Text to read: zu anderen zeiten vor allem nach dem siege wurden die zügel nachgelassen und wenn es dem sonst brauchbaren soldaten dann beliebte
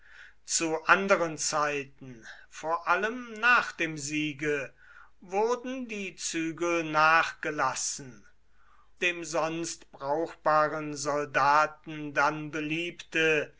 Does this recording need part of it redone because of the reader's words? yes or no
yes